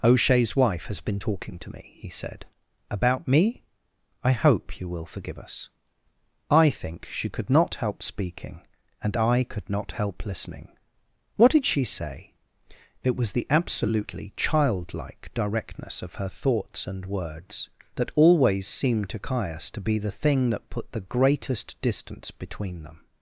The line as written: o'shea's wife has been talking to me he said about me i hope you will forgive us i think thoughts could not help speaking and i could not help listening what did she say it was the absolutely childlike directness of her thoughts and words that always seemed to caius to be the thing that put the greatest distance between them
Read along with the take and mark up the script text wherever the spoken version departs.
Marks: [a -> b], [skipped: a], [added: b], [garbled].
o'shea's wife has been talking to me he said about me i hope you will forgive us i think [thoughts -> she] could not help speaking and i could not help listening what did she say it was the absolutely childlike directness of her thoughts and words that always seemed to caius to be the thing that put the greatest distance between them